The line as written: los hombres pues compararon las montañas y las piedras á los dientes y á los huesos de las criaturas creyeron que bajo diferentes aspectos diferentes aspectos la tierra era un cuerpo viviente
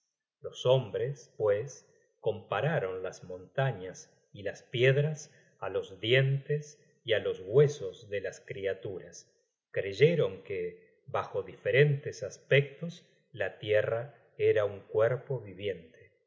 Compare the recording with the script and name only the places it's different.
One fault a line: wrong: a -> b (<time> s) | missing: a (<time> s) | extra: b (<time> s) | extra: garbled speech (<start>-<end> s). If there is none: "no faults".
missing: diferentes aspectos (13.0 s)